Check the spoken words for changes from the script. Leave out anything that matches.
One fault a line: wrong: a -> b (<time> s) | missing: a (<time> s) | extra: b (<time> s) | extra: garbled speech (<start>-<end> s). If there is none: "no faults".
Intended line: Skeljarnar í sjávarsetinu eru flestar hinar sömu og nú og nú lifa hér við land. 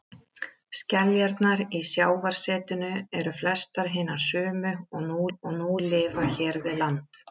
no faults